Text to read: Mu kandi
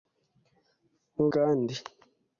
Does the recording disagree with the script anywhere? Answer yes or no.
no